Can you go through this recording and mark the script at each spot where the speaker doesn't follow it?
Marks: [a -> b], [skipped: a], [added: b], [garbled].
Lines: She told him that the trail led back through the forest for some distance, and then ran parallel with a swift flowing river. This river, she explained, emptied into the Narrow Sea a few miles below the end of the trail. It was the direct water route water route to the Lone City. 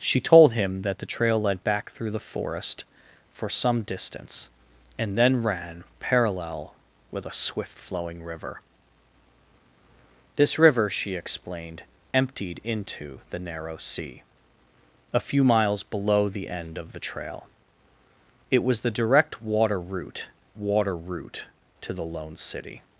She told him that the trail led back through the forest for some distance, and then ran parallel with a swift flowing river. This river, she explained, emptied into the Narrow Sea a few miles below the end of the trail. It was the direct water route water route to the Lone City.